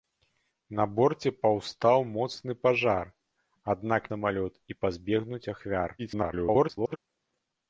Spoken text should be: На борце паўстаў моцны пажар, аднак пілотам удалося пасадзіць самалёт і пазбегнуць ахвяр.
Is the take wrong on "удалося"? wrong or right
wrong